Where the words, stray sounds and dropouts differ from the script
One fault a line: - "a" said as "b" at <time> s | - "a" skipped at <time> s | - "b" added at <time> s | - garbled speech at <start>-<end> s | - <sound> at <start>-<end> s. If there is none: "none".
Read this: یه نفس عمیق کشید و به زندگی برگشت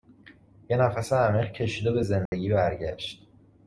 - dropout at 2.3-2.3 s